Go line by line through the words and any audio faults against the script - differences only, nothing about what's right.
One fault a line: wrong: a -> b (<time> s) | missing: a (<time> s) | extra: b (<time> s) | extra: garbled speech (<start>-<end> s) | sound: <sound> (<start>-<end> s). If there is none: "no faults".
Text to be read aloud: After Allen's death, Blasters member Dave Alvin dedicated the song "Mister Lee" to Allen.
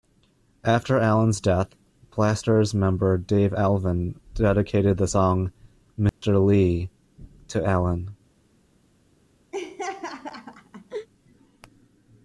sound: dropout (6.1-6.2 s)
sound: laugh (9.5-11.1 s)